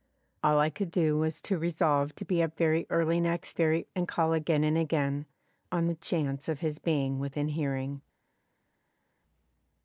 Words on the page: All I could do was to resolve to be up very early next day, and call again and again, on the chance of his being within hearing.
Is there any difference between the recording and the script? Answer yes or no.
yes